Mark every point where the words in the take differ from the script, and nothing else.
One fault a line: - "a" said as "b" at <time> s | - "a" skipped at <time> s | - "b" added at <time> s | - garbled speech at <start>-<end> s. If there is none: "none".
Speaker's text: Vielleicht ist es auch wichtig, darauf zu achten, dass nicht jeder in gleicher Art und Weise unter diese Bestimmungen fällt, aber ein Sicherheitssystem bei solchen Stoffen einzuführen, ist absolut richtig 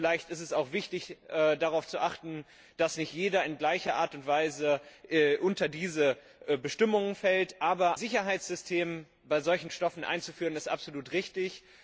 - "ein" skipped at 8.0 s